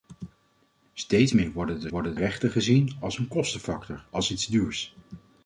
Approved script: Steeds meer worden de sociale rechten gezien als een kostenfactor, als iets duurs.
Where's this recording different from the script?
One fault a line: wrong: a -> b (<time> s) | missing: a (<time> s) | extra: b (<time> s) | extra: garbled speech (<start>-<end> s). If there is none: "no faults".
wrong: sociale -> worden (1.9 s)